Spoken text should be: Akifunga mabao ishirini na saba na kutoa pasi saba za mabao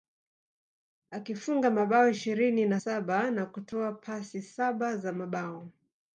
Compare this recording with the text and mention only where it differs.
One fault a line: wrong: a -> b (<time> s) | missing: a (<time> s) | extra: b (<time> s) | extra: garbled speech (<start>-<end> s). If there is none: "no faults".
no faults